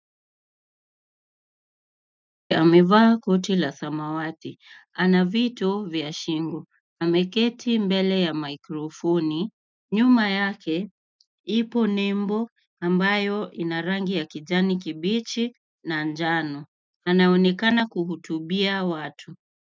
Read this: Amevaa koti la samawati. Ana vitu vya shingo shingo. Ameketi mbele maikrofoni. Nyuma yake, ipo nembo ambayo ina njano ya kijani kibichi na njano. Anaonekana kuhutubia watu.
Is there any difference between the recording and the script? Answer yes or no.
yes